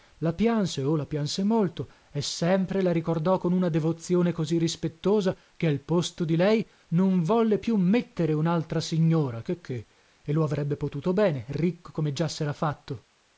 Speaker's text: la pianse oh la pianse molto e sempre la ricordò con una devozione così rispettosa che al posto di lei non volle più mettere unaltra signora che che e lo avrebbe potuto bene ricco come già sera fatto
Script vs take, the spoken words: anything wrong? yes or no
no